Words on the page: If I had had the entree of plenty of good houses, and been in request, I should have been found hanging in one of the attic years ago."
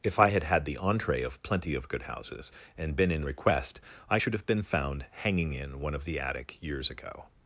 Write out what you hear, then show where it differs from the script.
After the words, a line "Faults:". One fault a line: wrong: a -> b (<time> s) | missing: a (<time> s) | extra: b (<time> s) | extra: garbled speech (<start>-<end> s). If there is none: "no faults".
If I had had the entree of plenty of good houses, and been in request, I should have been found hanging in one of the attic years ago."
Faults:
no faults